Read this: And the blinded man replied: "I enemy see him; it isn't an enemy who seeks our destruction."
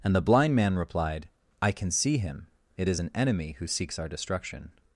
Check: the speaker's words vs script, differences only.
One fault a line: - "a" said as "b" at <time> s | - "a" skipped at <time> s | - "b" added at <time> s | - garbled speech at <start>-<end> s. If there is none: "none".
- "blinded" said as "blind" at 0.2 s
- "enemy" said as "can" at 1.7 s
- "isn't" said as "is" at 2.9 s